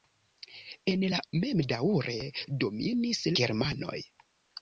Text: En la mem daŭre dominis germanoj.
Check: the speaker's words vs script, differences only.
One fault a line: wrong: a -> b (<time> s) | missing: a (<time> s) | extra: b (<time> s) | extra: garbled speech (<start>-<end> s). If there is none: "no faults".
no faults